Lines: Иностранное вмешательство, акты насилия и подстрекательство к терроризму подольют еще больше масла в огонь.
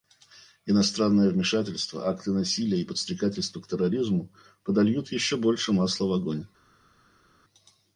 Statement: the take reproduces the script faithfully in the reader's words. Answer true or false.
true